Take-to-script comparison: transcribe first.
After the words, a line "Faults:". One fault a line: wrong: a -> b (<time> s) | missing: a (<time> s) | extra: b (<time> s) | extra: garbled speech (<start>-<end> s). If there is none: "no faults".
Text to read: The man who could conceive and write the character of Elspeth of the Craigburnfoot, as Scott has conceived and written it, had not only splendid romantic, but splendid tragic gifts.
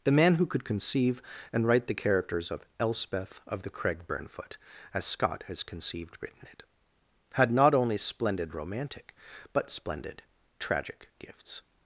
The man who could conceive and write the characters of Elspeth of the Craigburnfoot, as Scott has conceived written it, had not only splendid romantic, but splendid tragic gifts.
Faults:
wrong: character -> characters (1.9 s)
missing: and (6.2 s)